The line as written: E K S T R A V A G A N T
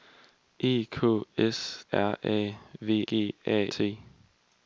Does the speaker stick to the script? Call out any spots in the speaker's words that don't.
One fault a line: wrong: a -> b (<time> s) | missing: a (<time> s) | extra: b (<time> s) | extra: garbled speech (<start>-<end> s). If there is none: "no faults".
missing: T (1.9 s)
missing: A (3.0 s)
missing: N (3.7 s)